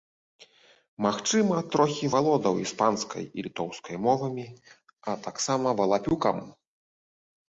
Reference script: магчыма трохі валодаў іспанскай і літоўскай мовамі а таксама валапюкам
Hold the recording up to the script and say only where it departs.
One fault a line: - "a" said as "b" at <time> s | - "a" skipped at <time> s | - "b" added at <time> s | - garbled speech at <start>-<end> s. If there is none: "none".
none